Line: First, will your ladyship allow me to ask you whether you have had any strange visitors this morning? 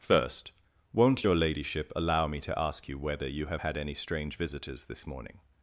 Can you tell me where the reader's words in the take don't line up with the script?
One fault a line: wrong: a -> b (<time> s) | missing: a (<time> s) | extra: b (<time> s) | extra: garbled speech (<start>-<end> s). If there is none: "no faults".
wrong: will -> won't (0.9 s)